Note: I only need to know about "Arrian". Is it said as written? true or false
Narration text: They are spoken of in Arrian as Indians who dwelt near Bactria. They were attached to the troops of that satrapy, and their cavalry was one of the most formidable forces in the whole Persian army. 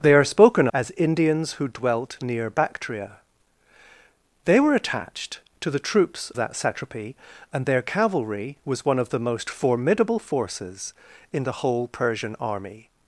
false